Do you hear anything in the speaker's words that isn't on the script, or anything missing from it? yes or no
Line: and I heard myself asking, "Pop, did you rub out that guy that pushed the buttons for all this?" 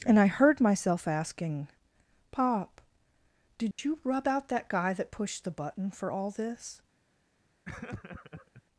yes